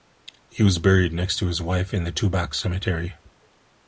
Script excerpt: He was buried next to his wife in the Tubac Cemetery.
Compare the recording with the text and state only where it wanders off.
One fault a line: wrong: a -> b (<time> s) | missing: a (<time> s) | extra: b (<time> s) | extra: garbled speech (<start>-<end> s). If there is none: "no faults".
no faults